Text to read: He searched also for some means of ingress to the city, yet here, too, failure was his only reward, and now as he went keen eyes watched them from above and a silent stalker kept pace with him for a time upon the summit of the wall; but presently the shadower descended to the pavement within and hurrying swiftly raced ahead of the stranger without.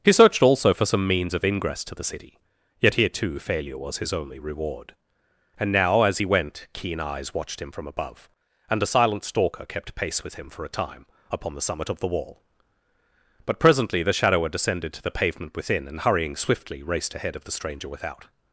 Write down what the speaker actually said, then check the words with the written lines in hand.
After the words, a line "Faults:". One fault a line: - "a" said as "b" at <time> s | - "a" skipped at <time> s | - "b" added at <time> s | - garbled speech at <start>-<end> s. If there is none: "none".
He searched also for some means of ingress to the city, yet here, too, failure was his only reward, and now as he went keen eyes watched him from above and a silent stalker kept pace with him for a time upon the summit of the wall; but presently the shadower descended to the pavement within and hurrying swiftly raced ahead of the stranger without.
Faults:
- "them" said as "him" at 7.6 s